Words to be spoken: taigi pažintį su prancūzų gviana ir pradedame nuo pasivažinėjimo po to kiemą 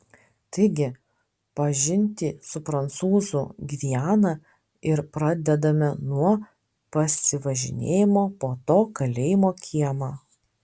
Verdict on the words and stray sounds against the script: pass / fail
fail